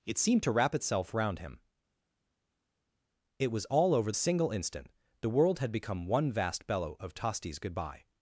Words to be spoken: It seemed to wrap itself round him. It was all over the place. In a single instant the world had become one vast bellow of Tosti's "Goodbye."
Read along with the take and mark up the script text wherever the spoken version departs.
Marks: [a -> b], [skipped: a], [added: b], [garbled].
It seemed to wrap itself round him. It was all over [skipped: the place. In] a single instant the world had become one vast bellow of Tosti's "Goodbye."